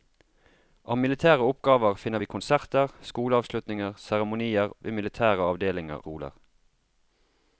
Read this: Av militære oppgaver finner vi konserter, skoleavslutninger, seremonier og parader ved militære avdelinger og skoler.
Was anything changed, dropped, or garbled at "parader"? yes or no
yes